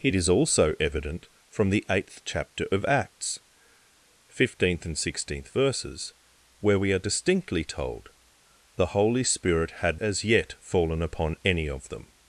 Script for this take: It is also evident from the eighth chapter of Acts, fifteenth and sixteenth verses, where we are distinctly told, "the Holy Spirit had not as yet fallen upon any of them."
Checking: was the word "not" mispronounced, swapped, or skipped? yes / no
yes